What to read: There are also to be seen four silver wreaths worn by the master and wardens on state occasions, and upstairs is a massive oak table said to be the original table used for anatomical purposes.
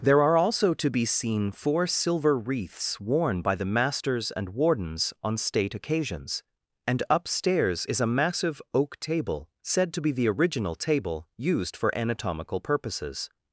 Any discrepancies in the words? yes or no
yes